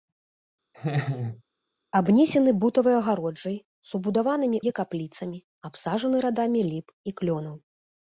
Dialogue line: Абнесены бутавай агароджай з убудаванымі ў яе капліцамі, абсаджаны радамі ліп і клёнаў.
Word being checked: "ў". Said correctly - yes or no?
no